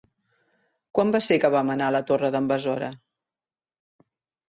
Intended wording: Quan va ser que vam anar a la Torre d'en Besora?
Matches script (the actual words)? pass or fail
pass